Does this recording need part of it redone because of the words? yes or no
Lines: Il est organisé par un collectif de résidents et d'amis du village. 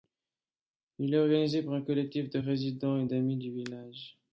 no